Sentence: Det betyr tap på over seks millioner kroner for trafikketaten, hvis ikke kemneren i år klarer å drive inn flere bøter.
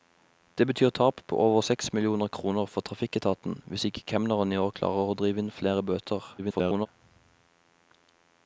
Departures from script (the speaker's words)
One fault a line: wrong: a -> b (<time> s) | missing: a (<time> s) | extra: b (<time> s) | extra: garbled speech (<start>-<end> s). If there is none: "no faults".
extra: garbled speech (6.4-6.9 s)